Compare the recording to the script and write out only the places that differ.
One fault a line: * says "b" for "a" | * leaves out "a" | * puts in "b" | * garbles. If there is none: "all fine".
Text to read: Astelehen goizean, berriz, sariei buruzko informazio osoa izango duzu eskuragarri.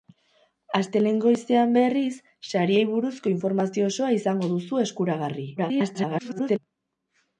* garbles